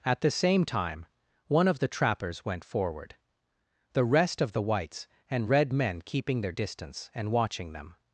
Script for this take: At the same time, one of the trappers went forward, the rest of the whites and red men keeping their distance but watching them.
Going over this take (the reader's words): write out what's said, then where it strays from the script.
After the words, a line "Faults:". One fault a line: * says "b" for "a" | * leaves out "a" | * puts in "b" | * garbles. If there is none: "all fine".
At the same time, one of the trappers went forward, the rest of the whites and red men keeping their distance and watching them.
Faults:
* says "and" for "but"